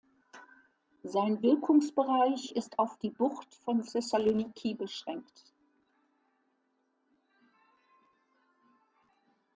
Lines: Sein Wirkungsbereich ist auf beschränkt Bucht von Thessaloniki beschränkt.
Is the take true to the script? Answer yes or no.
no